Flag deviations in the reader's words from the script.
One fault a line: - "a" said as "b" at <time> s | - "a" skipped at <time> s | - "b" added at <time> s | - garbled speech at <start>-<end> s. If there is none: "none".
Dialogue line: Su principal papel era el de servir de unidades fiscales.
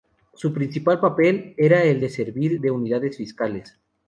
none